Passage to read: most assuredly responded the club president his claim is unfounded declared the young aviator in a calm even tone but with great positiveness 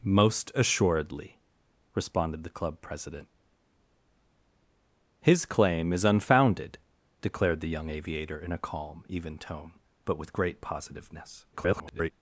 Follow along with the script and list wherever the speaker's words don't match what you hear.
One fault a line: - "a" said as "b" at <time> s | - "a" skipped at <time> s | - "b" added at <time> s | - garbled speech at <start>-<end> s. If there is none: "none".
- garbled speech at 11.5-12.1 s